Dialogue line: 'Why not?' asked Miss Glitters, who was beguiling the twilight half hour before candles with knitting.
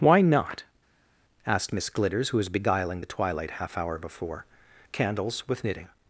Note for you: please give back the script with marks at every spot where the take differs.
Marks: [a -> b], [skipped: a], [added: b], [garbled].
'Why not?' asked Miss Glitters, who was beguiling the twilight half hour before candles with knitting.